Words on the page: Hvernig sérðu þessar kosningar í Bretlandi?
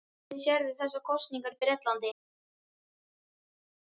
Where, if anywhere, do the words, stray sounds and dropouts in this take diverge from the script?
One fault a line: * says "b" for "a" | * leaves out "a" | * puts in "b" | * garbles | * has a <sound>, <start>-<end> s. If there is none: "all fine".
all fine